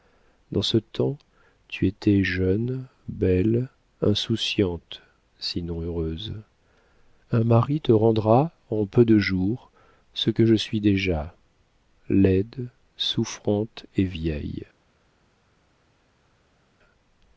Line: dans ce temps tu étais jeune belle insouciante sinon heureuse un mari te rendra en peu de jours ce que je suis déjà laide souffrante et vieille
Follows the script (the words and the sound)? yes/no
yes